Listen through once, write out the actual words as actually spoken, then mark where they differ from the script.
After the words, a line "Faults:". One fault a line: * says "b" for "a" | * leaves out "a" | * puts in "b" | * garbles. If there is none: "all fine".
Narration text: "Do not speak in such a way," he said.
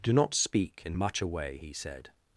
"Do not speak in much a way," he said.
Faults:
* says "much" for "such"